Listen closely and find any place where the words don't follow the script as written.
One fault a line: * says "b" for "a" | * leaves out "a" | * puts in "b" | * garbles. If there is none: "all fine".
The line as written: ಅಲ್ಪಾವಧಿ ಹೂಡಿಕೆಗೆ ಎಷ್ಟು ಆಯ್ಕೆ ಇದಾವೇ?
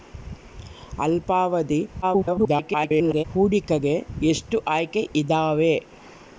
* garbles